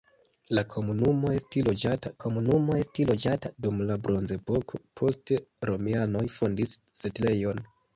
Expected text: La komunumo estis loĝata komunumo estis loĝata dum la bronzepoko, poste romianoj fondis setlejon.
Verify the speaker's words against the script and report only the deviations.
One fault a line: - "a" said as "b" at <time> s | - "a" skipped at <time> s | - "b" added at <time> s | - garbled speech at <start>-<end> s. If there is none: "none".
none